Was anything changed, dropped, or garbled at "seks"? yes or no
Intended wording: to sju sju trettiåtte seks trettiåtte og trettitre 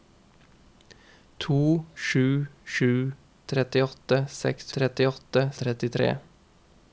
no